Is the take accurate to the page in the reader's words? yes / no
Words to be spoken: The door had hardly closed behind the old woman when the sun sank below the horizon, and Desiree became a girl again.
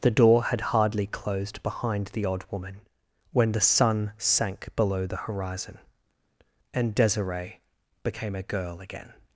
no